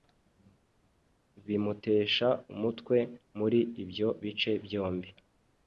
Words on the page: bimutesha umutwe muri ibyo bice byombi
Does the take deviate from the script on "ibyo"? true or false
false